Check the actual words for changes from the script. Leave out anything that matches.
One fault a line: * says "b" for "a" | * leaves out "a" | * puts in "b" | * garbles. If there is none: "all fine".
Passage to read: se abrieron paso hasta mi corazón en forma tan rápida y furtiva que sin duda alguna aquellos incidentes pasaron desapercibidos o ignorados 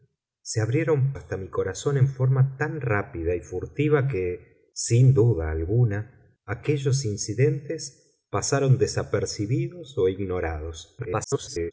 * leaves out "paso"
* garbles